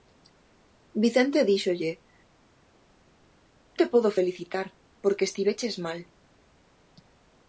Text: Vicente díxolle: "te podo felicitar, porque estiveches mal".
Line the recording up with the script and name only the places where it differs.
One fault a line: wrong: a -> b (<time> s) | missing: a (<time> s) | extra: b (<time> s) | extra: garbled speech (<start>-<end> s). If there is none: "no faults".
no faults